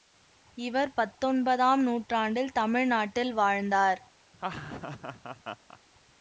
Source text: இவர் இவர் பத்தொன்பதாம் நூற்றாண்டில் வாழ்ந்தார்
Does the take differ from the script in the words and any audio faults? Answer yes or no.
yes